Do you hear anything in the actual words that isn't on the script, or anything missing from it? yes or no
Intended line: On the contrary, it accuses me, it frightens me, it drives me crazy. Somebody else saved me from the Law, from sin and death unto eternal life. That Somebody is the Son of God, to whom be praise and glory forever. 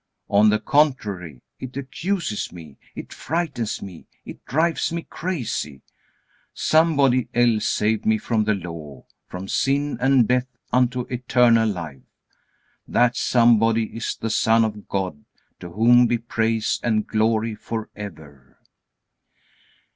no